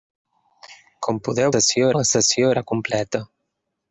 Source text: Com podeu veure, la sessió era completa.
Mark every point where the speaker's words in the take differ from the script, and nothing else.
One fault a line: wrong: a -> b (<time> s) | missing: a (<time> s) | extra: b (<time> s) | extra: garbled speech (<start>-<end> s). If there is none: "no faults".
wrong: veure -> sessió (1.5 s)